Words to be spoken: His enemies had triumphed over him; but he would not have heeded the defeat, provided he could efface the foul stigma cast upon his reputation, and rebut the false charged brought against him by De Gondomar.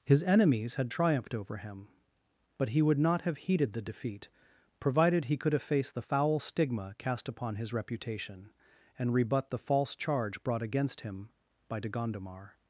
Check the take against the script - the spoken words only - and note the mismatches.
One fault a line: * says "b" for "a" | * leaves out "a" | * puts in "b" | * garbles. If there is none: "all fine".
* says "charge" for "charged"